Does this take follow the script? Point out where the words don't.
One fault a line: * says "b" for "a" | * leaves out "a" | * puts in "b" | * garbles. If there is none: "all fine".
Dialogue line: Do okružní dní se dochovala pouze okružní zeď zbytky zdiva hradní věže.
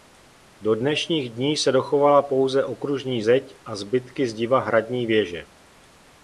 * says "dnešních" for "okružní"
* puts in "a"